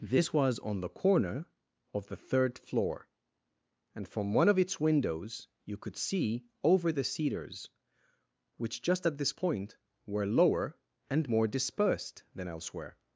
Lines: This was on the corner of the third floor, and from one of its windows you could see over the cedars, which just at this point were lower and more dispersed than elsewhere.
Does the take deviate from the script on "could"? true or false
false